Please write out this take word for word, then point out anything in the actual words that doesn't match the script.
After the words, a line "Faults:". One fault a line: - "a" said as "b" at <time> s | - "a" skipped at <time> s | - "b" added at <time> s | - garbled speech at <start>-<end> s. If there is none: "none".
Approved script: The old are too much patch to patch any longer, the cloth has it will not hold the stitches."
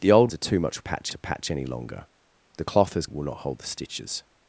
The old are too much patch to patch any longer, the cloth has it will not hold the stitches."
Faults:
none